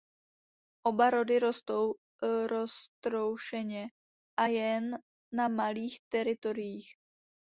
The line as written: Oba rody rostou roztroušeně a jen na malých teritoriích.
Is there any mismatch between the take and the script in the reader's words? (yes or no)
no